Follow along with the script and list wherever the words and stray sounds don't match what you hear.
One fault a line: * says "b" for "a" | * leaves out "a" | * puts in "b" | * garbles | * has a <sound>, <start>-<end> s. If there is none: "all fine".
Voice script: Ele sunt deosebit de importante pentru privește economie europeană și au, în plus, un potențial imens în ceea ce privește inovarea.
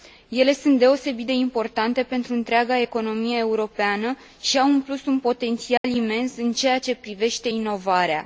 * says "întreaga" for "privește"
* has a dropout, 5.8-5.8 s